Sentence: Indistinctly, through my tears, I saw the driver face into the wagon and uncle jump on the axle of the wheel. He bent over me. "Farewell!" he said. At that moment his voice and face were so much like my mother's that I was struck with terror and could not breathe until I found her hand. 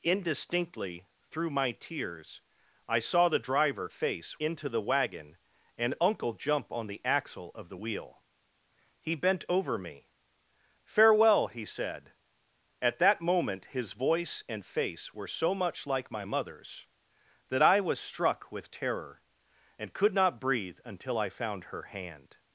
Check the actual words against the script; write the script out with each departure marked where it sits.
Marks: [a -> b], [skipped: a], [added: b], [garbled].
Indistinctly, through my tears, I saw the driver face into the wagon and uncle jump on the axle of the wheel. He bent over me. "Farewell!" he said. At that moment his voice and face were so much like my mother's that I was struck with terror and could not breathe until I found her hand.